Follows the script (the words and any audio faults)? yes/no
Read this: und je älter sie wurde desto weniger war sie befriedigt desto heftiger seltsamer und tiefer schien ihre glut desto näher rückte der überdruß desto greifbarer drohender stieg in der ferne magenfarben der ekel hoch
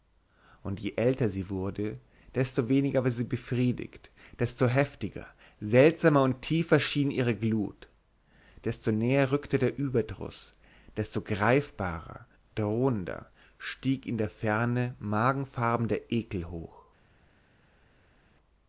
yes